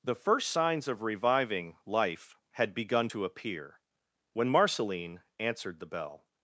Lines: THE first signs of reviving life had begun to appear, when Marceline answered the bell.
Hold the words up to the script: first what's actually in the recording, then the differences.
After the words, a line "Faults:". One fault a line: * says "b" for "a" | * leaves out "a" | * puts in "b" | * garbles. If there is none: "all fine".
THE first signs of reviving life had begun to appear, when Marceline answered the bell.
Faults:
all fine